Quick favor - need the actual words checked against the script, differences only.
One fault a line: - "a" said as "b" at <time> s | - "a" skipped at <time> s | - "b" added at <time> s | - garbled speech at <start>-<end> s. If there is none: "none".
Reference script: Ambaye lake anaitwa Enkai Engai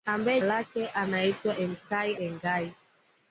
none